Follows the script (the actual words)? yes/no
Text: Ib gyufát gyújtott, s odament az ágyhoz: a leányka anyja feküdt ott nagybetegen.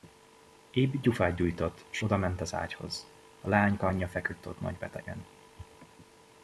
yes